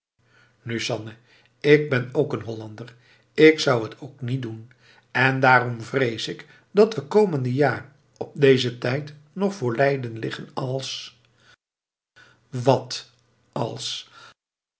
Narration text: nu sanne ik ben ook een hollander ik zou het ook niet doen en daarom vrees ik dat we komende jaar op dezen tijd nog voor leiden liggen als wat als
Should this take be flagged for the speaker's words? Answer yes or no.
no